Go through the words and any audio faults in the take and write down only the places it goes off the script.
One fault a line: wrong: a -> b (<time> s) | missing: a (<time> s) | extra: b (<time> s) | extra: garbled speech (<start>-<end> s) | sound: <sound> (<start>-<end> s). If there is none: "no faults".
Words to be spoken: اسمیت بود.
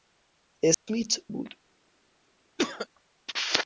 sound: dropout (0.7-0.9 s)
sound: cough (2.6-2.9 s)